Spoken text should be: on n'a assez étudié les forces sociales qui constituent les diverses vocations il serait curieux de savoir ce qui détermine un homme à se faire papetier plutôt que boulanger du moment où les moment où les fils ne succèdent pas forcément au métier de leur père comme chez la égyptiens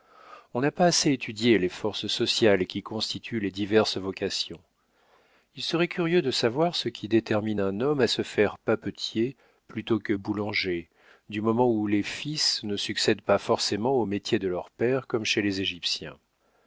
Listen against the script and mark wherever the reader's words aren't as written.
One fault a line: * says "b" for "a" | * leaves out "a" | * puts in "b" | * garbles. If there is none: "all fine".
* puts in "pas"
* leaves out "moment où les"
* says "les" for "la"